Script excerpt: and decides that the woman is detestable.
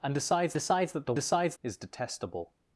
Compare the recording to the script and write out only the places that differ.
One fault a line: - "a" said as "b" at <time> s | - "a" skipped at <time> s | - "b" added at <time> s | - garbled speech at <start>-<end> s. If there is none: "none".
- "decides" added at 0.5 s
- "woman" said as "decides" at 1.1 s